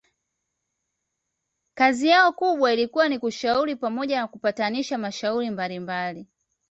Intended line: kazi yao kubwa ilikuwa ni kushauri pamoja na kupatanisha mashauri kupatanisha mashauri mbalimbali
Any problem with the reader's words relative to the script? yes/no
yes